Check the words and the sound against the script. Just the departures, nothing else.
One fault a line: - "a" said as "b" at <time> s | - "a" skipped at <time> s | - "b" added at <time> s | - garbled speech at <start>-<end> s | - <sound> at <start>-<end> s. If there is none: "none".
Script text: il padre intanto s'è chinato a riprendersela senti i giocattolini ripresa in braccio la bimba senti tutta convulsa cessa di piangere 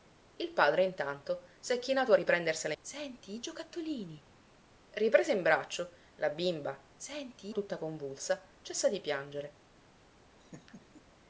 - laugh at 10.4-11.0 s